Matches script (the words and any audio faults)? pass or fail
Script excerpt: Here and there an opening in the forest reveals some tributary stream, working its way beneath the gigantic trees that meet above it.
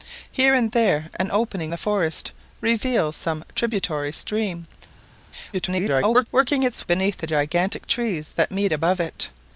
fail